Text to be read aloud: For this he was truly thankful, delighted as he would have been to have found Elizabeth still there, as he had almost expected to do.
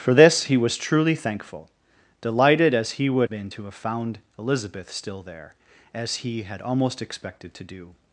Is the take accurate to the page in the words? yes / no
no